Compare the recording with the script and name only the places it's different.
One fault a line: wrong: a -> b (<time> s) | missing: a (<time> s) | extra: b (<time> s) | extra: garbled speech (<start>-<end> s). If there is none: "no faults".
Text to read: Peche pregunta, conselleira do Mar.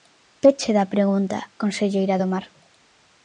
extra: da (0.8 s)